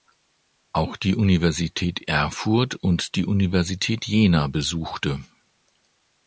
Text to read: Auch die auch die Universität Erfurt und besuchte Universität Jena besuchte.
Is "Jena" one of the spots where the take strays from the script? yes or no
no